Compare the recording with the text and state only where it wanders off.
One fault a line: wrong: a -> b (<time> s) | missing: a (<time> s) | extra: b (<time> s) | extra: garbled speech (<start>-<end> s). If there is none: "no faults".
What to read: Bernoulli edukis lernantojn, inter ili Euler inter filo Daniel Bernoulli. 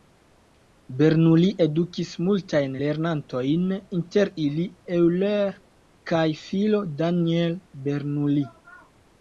extra: multajn (2.3 s)
wrong: inter -> kaj (6.1 s)